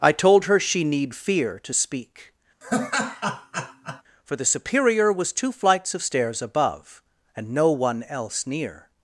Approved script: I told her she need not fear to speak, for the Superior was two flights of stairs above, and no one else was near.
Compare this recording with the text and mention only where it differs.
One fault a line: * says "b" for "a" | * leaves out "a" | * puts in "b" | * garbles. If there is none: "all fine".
* leaves out "not"
* leaves out "was"